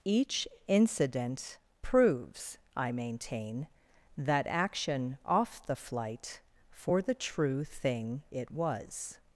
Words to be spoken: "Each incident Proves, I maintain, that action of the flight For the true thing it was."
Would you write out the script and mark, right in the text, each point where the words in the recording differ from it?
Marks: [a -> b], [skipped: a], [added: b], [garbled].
"Each incident Proves, I maintain, that action [of -> off] the flight For the true thing it was."